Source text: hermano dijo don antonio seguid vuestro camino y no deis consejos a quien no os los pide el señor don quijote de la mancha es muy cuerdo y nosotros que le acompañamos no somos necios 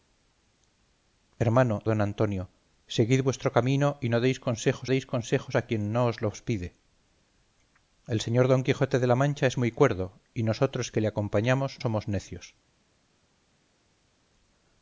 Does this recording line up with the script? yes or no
no